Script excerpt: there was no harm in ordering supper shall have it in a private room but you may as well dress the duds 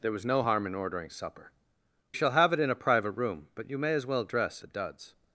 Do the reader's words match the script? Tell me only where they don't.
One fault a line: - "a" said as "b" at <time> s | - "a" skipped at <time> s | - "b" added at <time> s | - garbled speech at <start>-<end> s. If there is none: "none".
none